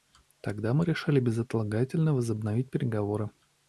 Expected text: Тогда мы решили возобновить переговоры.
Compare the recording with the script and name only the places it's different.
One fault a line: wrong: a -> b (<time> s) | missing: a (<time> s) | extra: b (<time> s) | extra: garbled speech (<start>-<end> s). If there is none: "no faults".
extra: безотлагательно (1.2 s)